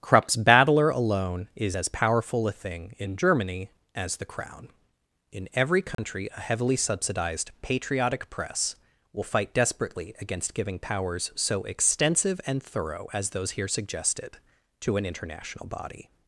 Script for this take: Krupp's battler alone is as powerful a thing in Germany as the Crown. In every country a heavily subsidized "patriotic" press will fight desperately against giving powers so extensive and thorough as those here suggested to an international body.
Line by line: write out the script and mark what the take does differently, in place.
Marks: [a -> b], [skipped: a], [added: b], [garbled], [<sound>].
Krupp's battler alone is as powerful a thing in Germany as the Crown. In every country [dropout] a heavily subsidized "patriotic" press will fight desperately against giving powers so extensive and thorough as those here suggested to an international body.